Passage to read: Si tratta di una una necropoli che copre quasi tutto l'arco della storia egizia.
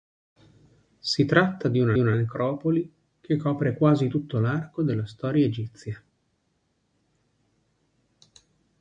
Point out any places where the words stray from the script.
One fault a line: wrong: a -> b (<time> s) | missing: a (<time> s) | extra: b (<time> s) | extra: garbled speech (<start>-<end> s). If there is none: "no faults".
no faults